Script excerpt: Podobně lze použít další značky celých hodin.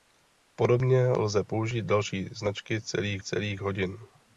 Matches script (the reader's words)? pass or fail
fail